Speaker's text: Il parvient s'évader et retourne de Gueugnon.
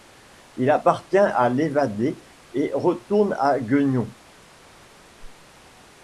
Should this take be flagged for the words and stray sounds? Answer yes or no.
yes